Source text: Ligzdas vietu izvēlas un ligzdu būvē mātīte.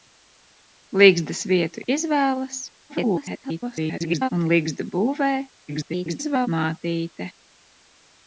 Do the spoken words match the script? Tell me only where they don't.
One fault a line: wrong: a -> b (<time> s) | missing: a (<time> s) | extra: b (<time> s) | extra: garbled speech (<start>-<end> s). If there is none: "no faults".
extra: garbled speech (2.9-4.3 s)
extra: garbled speech (5.7-6.5 s)